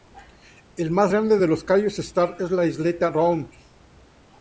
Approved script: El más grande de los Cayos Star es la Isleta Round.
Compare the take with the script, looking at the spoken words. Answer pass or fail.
pass